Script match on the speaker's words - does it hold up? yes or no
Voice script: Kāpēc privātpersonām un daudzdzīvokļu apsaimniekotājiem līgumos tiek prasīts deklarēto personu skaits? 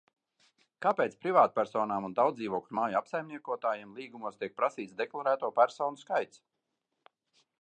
no